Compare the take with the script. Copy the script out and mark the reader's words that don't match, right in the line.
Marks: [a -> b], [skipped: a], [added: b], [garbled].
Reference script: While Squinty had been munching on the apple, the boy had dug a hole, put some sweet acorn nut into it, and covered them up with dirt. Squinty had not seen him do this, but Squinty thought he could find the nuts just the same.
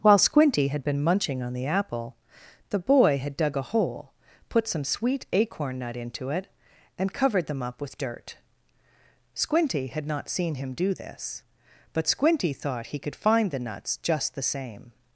While Squinty had been munching on the apple, the boy had dug a hole, put some sweet acorn nut into it, and covered them up with dirt. Squinty had not seen him do this, but Squinty thought he could find the nuts just the same.